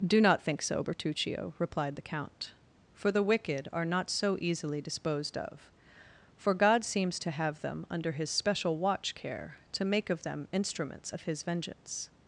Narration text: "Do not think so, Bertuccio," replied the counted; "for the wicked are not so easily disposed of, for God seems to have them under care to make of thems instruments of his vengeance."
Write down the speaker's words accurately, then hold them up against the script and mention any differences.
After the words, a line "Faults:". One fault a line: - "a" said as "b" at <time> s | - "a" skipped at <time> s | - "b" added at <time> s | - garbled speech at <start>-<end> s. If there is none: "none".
"Do not think so, Bertuccio," replied the count; "for the wicked are not so easily disposed of, for God seems to have them under his special watch care to make of them instruments of his vengeance."
Faults:
- "counted" said as "count" at 2.0 s
- "his special watch" added at 8.1 s
- "thems" said as "them" at 10.2 s